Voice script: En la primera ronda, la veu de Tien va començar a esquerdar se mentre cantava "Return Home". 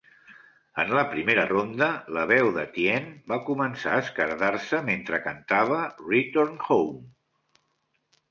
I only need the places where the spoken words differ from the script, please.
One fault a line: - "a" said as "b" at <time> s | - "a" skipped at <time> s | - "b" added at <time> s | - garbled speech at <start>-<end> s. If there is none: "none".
none